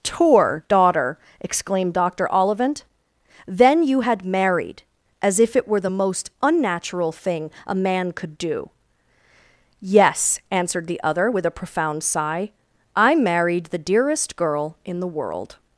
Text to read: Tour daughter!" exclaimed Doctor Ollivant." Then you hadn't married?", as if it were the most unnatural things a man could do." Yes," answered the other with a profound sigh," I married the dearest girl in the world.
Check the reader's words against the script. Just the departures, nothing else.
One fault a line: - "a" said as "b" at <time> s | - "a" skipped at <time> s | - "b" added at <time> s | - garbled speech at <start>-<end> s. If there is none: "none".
- "hadn't" said as "had" at 4.0 s
- "things" said as "thing" at 7.1 s